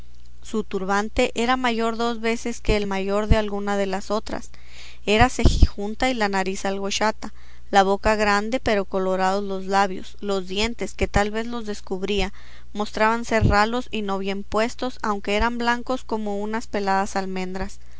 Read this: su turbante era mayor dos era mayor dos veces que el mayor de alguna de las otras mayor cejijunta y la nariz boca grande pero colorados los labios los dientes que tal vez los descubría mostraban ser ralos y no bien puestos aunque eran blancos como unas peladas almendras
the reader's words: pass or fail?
fail